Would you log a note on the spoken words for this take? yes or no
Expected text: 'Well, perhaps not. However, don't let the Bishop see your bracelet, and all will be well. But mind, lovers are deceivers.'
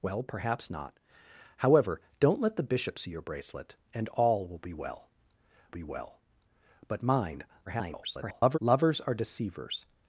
yes